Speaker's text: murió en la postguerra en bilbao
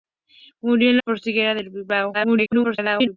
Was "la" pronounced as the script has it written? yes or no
no